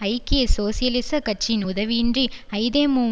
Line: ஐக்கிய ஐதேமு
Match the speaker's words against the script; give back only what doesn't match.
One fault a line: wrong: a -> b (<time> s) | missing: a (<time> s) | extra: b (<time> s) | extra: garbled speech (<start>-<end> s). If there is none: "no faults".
extra: சோசியலிச கட்சியின் உதவியின்றி (0.6 s)